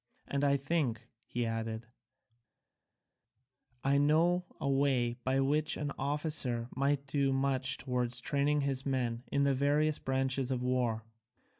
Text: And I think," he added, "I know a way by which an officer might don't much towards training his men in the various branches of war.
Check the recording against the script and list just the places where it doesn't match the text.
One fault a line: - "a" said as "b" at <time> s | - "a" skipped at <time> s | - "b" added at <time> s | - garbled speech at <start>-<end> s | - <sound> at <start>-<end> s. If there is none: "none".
- "don't" said as "do" at 7.1 s